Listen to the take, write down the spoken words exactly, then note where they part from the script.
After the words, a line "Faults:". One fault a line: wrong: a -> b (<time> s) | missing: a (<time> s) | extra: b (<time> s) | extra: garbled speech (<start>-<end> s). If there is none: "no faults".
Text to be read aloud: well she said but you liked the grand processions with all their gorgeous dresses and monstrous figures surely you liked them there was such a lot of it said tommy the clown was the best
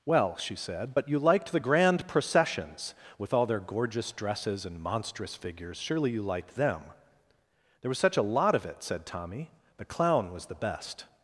well she said but you liked the grand processions with all their gorgeous dresses and monstrous figures surely you liked them there was such a lot of it said tommy the clown was the best
Faults:
no faults